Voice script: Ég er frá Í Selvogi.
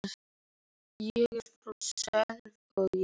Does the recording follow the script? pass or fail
pass